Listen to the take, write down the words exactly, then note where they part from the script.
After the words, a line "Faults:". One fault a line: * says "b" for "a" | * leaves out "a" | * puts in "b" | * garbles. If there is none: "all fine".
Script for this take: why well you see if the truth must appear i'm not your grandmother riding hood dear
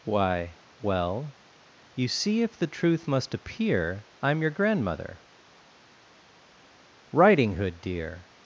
why well you see if the truth must appear i'm your grandmother riding hood dear
Faults:
* leaves out "not"